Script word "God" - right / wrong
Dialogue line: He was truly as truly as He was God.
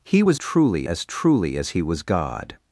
right